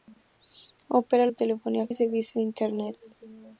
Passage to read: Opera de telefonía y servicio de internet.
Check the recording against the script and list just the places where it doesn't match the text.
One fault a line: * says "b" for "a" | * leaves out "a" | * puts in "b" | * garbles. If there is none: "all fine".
all fine